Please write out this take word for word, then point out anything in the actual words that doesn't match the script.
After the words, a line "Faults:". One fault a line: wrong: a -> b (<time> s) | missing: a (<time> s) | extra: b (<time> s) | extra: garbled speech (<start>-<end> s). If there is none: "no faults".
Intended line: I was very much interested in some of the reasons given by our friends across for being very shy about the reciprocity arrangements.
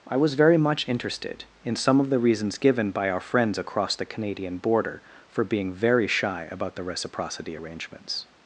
I was very much interested in some of the reasons given by our friends across the Canadian border for being very shy about the reciprocity arrangements.
Faults:
extra: the Canadian border (3.9 s)